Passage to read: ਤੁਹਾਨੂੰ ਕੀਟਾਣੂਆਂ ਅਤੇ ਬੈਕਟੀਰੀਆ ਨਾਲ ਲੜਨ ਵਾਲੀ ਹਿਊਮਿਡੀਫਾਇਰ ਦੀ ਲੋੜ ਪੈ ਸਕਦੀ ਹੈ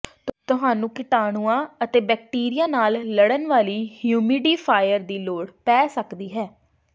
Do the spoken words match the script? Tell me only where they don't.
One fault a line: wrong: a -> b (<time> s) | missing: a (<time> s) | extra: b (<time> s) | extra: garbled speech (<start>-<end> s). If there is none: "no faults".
no faults